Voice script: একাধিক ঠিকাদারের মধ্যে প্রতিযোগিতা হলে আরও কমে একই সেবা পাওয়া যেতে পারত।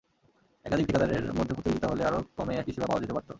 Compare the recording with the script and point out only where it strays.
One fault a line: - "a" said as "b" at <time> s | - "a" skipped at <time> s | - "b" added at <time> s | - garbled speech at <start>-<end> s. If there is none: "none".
none